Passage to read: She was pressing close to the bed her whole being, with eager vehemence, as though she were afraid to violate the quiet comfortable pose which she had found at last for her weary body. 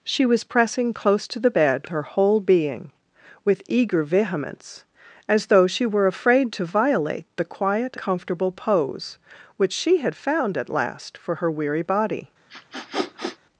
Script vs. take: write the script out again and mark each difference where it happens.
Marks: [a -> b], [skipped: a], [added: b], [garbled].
She was pressing close to the bed her whole being, with eager vehemence, as though she were afraid to violate the quiet comfortable pose which she had found at last for her weary body.